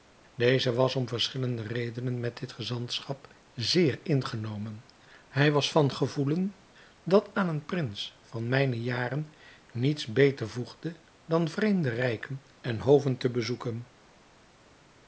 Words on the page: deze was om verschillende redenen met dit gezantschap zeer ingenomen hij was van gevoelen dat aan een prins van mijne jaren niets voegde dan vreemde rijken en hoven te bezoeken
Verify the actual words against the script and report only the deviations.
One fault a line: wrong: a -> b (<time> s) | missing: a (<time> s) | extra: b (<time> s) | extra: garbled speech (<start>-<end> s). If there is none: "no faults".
extra: beter (10.0 s)